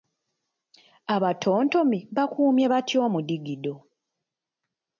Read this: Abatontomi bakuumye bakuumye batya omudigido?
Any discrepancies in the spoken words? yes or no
yes